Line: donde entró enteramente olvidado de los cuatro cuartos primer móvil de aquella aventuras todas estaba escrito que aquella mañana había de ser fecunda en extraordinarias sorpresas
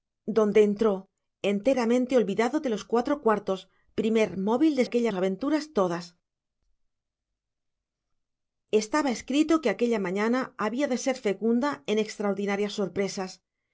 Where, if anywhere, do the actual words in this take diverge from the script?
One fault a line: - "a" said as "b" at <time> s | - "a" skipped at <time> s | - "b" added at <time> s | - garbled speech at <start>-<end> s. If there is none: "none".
none